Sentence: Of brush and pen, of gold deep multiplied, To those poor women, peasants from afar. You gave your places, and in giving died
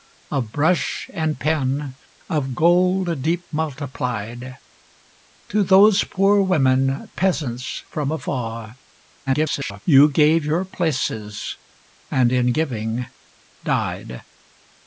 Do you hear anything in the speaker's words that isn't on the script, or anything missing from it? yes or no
yes